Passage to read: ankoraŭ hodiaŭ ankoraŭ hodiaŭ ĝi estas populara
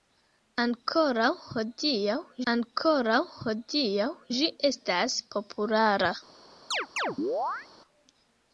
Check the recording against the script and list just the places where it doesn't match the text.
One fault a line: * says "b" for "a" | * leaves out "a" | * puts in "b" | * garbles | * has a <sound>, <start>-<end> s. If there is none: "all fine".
* has a chirp, 6.7-7.7 s